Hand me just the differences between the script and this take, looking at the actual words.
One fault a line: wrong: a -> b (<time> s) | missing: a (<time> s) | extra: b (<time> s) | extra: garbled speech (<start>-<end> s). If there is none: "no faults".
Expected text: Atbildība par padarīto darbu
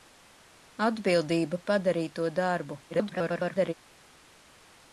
missing: par (1.6 s)
extra: garbled speech (2.9-3.7 s)